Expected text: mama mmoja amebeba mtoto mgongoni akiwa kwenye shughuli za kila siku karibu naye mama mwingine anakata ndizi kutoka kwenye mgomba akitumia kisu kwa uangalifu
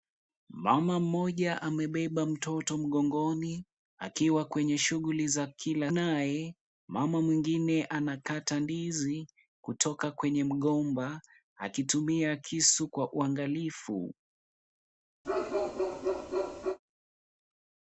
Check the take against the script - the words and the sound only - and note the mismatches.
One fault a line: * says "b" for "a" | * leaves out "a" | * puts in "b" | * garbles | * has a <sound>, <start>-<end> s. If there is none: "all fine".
* leaves out "siku karibu"
* has a bark, 15.2-16.8 s